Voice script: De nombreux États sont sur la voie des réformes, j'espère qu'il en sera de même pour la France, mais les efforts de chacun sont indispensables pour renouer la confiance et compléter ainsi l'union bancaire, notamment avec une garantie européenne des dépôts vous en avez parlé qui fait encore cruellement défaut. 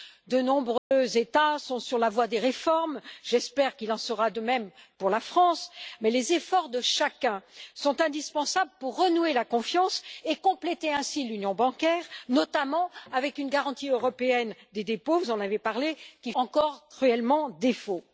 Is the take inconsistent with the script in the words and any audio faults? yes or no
yes